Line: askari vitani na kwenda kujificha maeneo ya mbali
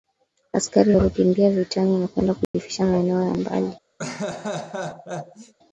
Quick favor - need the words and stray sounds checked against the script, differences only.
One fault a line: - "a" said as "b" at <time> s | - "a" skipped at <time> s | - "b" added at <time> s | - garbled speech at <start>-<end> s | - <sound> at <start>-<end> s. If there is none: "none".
- "walikimbia" added at 0.9 s
- dropout at 2.4-2.5 s
- laugh at 4.0-5.5 s